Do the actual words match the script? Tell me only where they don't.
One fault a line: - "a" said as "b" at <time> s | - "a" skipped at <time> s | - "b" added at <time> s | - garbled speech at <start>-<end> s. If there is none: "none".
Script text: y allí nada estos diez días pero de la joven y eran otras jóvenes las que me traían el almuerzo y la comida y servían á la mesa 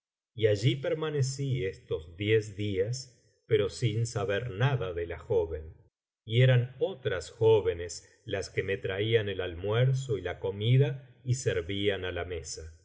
- "nada" said as "permanecí" at 0.8 s
- "sin saber nada" added at 3.7 s